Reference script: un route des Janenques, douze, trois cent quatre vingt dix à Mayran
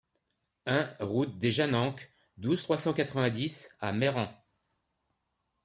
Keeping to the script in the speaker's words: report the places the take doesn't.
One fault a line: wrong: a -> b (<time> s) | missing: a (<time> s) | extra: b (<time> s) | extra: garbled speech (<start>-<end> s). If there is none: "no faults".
no faults